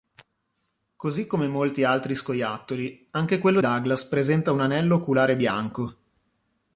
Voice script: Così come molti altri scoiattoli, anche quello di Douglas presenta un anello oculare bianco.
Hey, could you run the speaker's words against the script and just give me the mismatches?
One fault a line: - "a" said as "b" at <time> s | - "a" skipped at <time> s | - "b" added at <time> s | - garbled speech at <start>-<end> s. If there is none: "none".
- "di" skipped at 3.6 s